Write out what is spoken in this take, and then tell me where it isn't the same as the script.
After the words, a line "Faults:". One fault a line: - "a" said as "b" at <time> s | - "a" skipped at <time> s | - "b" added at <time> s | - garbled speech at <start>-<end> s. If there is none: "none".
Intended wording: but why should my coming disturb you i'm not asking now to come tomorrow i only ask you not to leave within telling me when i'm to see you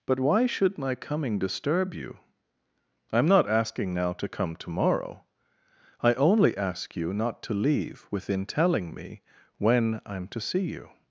but why should my coming disturb you i'm not asking now to come tomorrow i only ask you not to leave within telling me when i'm to see you
Faults:
none